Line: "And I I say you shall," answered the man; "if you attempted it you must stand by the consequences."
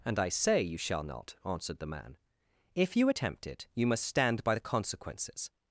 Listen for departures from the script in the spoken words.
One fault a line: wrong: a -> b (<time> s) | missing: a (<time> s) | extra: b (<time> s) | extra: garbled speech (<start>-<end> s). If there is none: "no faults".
missing: I (0.3 s)
extra: not (1.0 s)
wrong: attempted -> attempt (3.1 s)